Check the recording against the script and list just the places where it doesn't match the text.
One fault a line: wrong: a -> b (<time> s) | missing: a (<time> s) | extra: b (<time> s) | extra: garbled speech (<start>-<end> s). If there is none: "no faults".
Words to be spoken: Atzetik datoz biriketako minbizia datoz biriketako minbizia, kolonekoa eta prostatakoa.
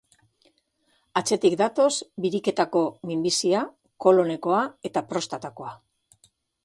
missing: datoz biriketako minbizia (3.6 s)